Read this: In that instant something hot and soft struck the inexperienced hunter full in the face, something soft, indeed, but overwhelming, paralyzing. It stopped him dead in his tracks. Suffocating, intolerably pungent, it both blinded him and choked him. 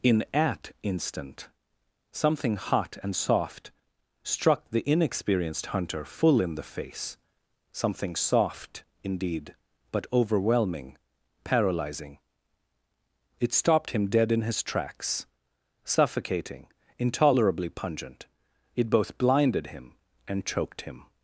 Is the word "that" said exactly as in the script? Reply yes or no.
no